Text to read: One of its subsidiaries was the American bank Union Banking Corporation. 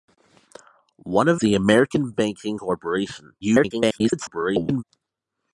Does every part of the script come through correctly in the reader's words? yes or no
no